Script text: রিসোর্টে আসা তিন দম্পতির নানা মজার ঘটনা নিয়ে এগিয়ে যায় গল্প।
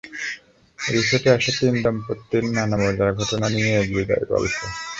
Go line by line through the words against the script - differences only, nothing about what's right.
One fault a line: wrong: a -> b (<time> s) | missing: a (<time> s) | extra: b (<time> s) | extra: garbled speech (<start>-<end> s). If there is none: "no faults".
no faults